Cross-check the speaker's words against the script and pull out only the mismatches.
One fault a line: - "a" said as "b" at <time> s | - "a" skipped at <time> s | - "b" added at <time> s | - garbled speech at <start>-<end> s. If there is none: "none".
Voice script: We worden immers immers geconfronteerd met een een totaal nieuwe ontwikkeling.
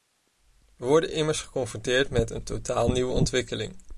- "immers" skipped at 1.4 s
- "een" skipped at 2.4 s